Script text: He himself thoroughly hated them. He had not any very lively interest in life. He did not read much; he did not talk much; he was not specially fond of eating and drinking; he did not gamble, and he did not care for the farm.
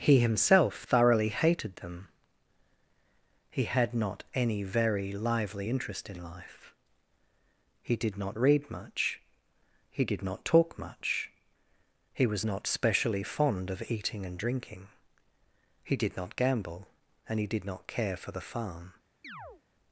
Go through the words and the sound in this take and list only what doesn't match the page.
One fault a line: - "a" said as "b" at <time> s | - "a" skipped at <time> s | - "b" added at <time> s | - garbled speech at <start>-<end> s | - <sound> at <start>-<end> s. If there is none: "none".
- chirp at 19.2-19.6 s